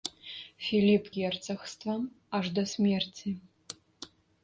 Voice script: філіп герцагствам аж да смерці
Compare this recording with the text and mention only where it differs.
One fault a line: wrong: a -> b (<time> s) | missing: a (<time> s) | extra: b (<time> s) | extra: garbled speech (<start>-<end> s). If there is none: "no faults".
no faults